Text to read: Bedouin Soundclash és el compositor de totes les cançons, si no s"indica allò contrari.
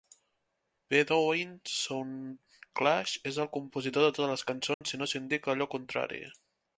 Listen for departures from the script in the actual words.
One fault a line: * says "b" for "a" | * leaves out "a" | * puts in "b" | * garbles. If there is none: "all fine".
all fine